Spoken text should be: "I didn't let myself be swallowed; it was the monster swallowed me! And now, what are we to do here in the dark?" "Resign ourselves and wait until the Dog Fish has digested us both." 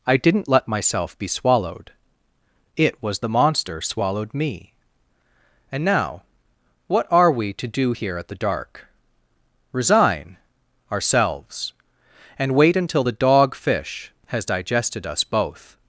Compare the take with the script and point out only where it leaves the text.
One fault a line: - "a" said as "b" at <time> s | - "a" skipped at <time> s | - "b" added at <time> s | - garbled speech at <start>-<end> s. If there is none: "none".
- "in" said as "at" at 8.2 s